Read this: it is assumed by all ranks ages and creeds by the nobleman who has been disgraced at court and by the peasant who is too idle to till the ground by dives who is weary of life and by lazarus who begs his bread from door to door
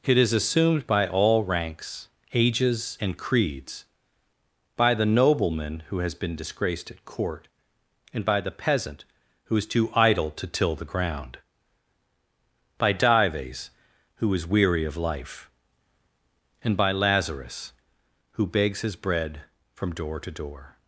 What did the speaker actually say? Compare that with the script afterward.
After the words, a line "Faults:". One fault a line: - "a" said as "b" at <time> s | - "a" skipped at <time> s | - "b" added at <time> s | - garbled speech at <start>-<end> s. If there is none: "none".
it is assumed by all ranks ages and creeds by the nobleman who has been disgraced at court and by the peasant who is too idle to till the ground by dives who is weary of life and by lazarus who begs his bread from door to door
Faults:
none